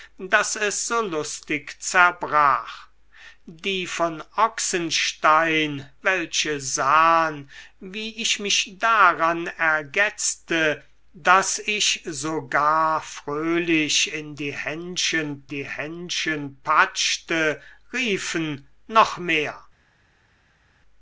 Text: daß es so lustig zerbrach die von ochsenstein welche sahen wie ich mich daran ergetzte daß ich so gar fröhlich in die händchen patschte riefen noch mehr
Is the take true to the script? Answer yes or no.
no